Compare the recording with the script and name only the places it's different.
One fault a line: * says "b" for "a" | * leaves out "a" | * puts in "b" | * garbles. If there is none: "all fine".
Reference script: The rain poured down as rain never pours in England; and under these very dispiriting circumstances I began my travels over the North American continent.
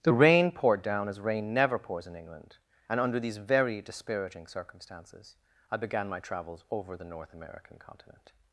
all fine